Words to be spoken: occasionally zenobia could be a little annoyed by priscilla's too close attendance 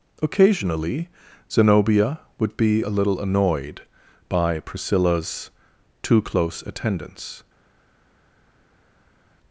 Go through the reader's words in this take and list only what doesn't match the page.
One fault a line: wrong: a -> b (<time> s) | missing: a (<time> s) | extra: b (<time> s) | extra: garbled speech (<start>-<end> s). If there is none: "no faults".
wrong: could -> would (2.4 s)